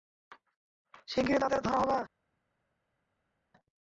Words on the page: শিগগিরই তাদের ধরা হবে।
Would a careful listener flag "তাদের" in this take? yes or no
no